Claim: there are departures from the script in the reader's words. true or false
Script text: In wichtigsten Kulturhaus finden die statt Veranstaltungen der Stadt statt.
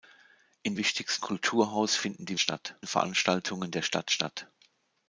false